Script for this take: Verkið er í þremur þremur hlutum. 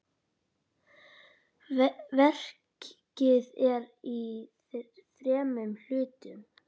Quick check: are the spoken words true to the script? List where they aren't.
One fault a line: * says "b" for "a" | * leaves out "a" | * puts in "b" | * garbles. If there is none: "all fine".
* leaves out "þremur"